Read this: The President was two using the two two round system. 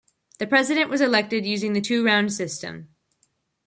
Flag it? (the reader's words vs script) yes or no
yes